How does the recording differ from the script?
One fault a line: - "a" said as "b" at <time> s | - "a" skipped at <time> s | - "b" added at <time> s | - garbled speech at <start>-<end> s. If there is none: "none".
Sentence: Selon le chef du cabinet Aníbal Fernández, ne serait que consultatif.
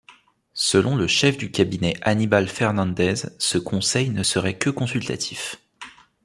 - "ce conseil" added at 3.4 s